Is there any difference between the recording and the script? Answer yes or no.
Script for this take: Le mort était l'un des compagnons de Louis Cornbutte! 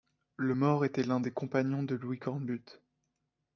no